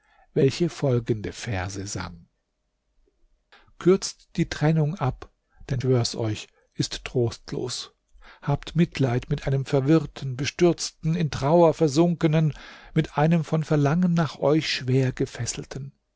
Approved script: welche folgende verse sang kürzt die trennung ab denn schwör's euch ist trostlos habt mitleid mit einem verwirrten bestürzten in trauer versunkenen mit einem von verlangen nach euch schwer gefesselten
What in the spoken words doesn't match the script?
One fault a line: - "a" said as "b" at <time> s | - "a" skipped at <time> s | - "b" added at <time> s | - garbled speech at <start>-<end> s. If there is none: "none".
none